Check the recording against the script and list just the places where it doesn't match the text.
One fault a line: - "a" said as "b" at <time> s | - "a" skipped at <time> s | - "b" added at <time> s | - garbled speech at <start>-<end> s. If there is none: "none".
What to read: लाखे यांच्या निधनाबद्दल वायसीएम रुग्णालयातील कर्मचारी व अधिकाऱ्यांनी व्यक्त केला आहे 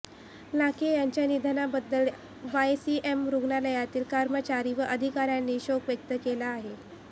- "शोक" added at 5.6 s